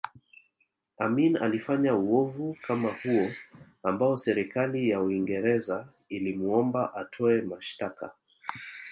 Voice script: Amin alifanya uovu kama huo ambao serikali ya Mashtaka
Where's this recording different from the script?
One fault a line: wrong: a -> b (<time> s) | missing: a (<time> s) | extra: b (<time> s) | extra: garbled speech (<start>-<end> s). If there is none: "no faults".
extra: Uingereza ilimuomba atoe (5.0 s)